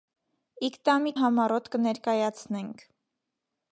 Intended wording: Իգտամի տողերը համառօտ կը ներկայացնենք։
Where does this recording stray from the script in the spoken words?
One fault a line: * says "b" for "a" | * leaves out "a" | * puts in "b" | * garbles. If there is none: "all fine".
* leaves out "տողերը"